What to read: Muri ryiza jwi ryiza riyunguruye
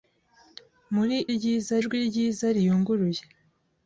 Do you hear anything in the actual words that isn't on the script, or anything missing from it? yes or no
no